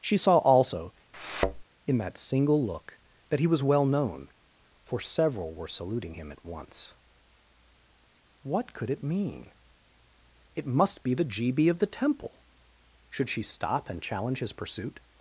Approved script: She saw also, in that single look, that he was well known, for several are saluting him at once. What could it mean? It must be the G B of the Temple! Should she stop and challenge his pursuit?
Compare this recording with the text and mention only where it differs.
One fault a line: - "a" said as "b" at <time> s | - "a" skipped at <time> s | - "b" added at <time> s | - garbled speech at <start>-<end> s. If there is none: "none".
- "are" said as "were" at 5.5 s